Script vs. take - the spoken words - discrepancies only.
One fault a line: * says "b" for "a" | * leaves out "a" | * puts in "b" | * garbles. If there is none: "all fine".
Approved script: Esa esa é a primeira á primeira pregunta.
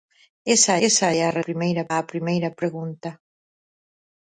all fine